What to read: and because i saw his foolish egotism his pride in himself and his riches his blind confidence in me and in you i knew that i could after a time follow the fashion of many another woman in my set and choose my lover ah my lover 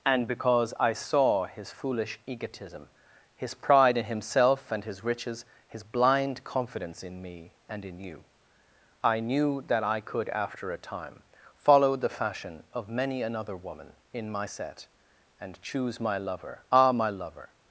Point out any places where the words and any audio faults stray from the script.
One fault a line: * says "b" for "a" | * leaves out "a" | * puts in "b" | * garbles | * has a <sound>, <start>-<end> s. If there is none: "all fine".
all fine